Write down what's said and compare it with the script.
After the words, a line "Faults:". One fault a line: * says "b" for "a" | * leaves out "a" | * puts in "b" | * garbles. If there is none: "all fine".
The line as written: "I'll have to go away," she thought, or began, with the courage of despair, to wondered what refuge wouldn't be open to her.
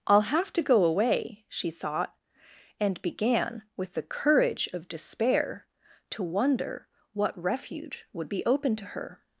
"I'll have to go away," she thought, and began, with the courage of despair, to wonder what refuge would be open to her.
Faults:
* says "and" for "or"
* says "wonder" for "wondered"
* says "would" for "wouldn't"